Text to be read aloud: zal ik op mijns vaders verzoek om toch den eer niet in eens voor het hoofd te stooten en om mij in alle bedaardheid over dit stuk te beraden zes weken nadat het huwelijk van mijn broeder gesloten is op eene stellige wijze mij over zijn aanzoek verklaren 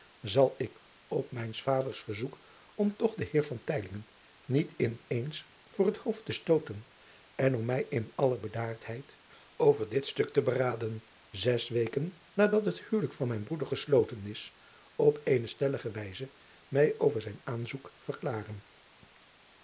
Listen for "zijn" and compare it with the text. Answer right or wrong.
right